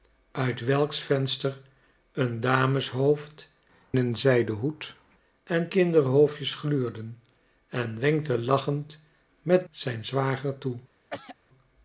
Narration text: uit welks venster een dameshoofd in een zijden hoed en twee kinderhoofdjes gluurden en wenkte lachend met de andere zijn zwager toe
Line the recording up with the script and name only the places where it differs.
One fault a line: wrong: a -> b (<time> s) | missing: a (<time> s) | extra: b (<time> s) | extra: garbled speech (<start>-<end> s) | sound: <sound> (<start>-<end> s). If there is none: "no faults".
missing: in (3.5 s)
missing: twee (5.7 s)
missing: de andere (9.7 s)
sound: throat clearing (11.1-11.4 s)